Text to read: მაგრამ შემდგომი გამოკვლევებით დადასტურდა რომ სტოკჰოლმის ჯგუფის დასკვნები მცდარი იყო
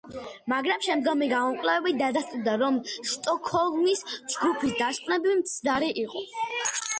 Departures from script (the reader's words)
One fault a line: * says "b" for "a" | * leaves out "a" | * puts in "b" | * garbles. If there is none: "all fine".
all fine